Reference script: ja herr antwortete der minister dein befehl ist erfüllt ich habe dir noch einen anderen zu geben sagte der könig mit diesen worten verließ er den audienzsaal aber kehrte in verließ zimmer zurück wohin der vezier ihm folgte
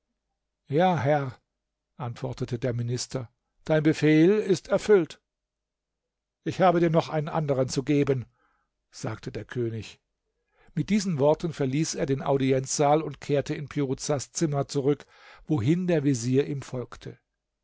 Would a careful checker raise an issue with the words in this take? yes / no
yes